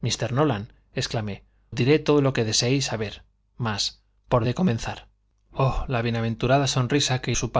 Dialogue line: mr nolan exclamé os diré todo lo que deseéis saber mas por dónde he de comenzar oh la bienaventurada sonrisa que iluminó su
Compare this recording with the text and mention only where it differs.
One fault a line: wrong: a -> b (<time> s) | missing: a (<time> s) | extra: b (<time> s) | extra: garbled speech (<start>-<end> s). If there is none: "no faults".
missing: os (1.4 s)
missing: dónde (4.5 s)
missing: iluminó (7.3 s)